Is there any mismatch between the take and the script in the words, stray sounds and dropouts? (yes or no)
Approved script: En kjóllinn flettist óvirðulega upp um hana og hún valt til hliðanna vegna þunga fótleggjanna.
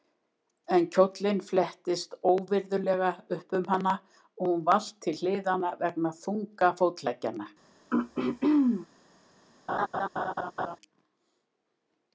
yes